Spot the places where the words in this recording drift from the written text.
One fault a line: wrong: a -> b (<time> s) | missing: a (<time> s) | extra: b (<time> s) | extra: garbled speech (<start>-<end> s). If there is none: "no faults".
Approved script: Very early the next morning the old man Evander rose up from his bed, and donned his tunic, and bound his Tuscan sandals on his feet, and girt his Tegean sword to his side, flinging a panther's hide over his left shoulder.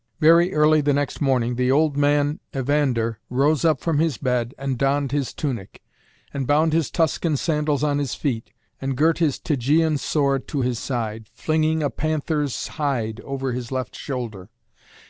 no faults